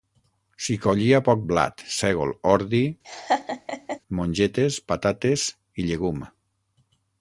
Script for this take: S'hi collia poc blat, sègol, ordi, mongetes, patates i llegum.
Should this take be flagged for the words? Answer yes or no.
no